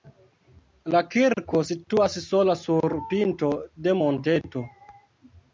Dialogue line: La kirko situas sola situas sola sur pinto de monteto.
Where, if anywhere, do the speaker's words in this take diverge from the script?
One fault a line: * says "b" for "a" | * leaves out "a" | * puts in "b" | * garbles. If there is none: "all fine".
* leaves out "situas sola"